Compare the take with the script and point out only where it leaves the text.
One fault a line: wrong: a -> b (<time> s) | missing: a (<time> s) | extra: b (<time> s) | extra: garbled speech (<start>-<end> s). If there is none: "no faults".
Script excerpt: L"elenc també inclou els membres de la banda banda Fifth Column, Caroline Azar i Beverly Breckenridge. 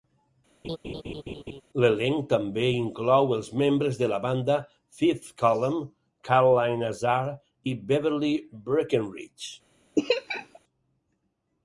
missing: banda (4.6 s)